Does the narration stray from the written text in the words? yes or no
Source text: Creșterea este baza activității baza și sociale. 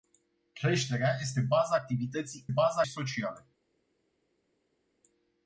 no